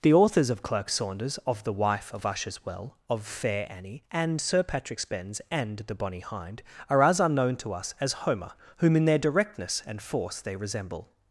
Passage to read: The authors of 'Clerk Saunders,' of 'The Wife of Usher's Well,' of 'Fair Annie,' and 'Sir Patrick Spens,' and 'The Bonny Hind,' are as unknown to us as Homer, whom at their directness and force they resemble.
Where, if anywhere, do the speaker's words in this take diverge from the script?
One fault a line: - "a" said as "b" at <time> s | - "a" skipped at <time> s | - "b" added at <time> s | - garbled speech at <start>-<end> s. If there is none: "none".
- "at" said as "in" at 8.9 s